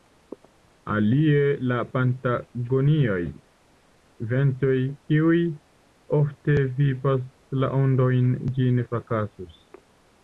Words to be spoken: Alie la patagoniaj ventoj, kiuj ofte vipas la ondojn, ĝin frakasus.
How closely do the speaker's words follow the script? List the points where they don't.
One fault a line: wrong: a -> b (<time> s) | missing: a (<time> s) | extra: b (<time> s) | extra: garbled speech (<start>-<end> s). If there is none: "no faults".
no faults